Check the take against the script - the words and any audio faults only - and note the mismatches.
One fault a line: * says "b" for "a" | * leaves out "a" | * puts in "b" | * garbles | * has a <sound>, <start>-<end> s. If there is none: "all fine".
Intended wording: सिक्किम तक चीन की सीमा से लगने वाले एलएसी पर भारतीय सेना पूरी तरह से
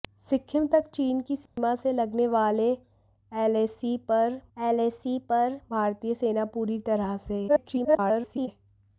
* has a dropout, 1.5-1.6 s
* puts in "एलएसी पर"
* garbles